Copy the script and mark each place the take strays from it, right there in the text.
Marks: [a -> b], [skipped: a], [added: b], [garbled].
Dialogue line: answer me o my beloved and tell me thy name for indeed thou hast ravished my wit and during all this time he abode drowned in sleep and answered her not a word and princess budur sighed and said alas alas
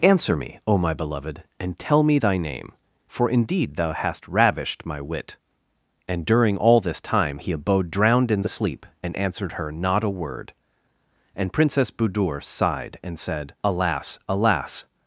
answer me o my beloved and tell me thy name for indeed thou hast ravished my wit and during all this time he abode drowned in sleep and answered her not a word and princess budur sighed and said alas alas